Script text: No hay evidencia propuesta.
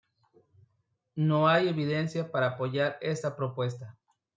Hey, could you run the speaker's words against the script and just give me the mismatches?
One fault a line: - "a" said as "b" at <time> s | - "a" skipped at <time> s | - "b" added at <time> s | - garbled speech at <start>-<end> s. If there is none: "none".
- "para apoyar esta" added at 2.3 s